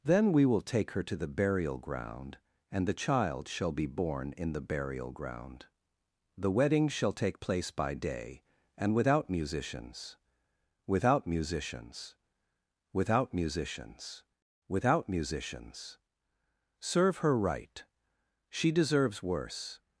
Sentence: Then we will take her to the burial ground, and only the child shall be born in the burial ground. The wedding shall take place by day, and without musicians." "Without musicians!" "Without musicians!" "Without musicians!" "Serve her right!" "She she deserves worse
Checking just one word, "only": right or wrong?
wrong